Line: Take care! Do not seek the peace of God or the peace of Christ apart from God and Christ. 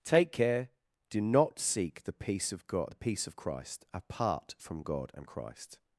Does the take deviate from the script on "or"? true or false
true